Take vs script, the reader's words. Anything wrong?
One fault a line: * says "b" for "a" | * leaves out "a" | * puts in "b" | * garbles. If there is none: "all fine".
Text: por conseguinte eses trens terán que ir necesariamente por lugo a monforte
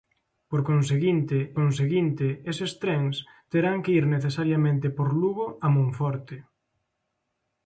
* puts in "conseguinte"